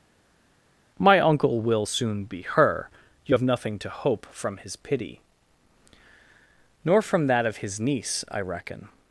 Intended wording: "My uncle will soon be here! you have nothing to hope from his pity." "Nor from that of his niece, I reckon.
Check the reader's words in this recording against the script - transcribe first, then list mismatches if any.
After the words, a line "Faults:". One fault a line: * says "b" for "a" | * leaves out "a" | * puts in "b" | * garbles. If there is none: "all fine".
"My uncle will soon be her! you have nothing to hope from his pity." "Nor from that of his niece, I reckon.
Faults:
* says "her" for "here"